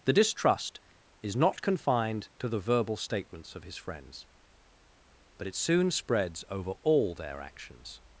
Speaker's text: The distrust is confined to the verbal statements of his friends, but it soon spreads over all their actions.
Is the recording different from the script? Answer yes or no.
yes